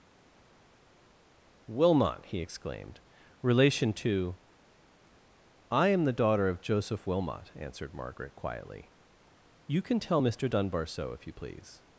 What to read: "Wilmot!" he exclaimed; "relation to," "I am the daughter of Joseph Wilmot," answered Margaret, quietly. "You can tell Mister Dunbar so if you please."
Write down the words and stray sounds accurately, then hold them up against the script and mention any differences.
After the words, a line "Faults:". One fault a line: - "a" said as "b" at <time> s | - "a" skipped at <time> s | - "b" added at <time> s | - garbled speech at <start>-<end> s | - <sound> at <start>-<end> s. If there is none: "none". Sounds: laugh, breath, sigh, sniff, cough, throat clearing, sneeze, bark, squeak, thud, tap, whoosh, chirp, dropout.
"Wilmot!" he exclaimed; "relation to," "I am the daughter of Joseph Wilmot," answered Margaret, quietly. "You can tell Mister Dunbar so if you please."
Faults:
none